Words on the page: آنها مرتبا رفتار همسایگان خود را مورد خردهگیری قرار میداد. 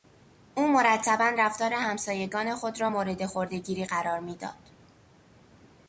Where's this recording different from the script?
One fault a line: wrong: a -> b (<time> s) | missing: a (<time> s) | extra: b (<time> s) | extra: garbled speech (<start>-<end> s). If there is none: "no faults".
wrong: آنها -> او (0.6 s)